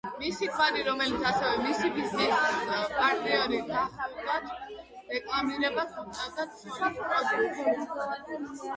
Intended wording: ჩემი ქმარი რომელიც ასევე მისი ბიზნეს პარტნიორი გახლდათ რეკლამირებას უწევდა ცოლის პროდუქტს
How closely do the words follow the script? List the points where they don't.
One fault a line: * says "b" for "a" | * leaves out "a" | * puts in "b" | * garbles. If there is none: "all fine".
* says "მისი" for "ჩემი"